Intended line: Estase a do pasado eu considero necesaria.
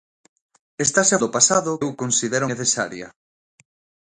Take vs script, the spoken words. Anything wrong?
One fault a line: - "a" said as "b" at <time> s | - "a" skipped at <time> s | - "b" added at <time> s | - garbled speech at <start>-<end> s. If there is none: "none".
none